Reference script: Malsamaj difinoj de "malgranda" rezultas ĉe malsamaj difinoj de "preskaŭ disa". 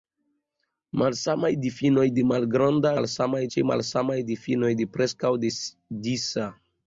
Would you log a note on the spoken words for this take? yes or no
yes